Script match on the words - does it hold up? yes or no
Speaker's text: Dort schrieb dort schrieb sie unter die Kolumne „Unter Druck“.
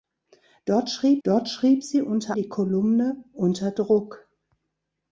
yes